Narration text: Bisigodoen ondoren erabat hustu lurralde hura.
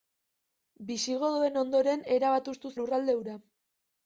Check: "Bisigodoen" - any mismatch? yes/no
no